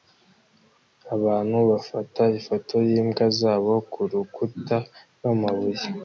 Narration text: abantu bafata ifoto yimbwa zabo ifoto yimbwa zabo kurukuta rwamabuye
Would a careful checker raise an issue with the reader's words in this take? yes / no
yes